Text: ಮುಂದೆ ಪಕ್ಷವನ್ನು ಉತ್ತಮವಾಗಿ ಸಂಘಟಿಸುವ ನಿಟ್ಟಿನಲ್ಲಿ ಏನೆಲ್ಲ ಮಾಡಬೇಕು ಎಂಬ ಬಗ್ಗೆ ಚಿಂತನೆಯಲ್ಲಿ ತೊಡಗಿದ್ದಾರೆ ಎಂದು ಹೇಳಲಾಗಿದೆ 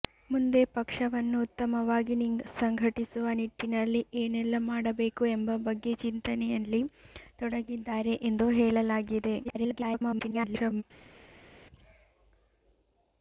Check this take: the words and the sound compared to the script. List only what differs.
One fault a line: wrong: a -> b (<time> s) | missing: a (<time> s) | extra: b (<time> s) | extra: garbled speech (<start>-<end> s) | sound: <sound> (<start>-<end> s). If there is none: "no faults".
extra: garbled speech (9.4-10.8 s)